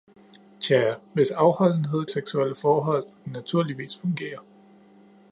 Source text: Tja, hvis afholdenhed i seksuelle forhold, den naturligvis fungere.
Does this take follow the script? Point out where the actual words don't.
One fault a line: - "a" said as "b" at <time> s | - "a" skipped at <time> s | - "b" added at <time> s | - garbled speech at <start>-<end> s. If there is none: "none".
none